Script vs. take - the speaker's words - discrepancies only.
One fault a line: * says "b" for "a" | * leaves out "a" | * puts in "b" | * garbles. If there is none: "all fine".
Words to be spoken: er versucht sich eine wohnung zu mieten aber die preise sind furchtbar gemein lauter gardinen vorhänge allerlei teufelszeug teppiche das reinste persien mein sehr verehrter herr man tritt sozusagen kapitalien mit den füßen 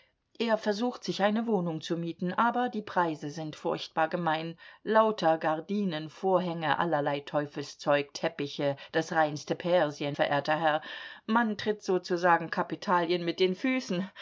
* leaves out "mein sehr"